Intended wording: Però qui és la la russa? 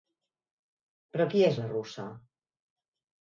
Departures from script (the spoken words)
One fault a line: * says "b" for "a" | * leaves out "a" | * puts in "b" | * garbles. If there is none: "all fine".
* leaves out "la"